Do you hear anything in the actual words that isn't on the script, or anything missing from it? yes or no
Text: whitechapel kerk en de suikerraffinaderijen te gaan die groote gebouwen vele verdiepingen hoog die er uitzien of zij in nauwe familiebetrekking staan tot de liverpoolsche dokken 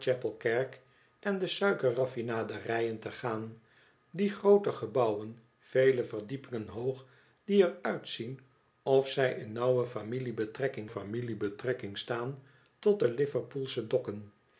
yes